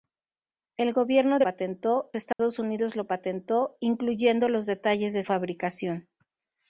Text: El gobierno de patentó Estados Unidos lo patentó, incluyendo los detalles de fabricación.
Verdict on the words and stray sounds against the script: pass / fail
fail